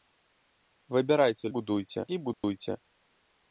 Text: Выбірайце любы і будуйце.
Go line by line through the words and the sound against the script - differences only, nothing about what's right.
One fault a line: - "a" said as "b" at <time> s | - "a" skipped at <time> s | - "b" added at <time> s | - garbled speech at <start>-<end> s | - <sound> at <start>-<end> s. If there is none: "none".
- "любы" said as "будуйце" at 1.6 s
- dropout at 2.3-2.4 s